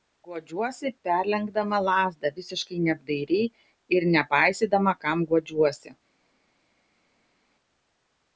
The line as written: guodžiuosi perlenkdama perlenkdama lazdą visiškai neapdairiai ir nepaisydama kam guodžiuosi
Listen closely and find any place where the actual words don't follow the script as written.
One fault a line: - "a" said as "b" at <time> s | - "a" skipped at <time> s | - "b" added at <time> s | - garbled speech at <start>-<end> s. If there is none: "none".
- "perlenkdama" skipped at 1.8 s